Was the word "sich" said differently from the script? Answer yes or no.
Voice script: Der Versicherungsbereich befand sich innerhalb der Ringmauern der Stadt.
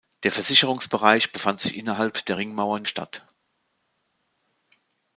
no